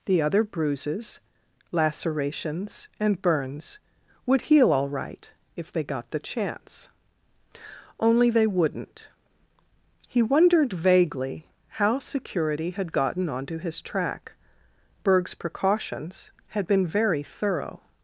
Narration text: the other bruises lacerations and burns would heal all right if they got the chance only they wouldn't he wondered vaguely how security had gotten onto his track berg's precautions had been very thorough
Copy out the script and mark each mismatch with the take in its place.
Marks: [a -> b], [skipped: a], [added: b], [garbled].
the other bruises lacerations and burns would heal all right if they got the chance only they wouldn't he wondered vaguely how security had gotten onto his track berg's precautions had been very thorough